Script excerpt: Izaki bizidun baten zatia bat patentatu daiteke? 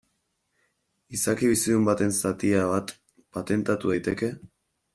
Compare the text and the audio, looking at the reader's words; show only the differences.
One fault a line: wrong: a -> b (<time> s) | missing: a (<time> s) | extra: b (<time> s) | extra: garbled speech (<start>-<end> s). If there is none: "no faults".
no faults